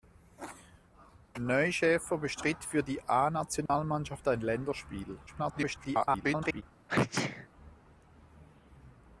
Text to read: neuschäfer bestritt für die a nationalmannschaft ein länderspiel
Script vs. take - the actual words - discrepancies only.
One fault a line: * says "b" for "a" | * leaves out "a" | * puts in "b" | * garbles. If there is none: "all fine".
* garbles